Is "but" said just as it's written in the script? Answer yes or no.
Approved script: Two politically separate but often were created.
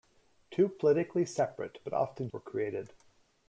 yes